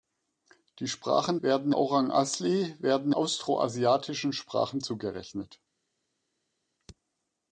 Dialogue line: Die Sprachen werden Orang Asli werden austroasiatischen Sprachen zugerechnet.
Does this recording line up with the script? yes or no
yes